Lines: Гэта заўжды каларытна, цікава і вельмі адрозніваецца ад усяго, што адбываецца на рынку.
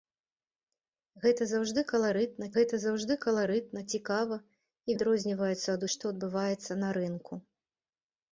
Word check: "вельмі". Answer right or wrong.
wrong